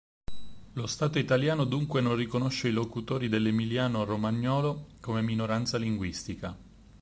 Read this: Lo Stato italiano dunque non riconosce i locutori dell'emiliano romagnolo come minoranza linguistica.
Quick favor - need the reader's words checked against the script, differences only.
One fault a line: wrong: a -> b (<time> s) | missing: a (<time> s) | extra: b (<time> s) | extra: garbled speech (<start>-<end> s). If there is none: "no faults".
no faults